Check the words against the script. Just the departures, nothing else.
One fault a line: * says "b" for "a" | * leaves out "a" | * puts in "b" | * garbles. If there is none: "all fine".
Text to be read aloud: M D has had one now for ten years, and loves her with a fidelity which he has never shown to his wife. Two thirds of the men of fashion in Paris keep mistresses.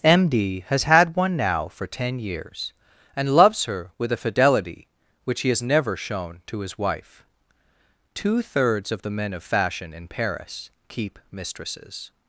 all fine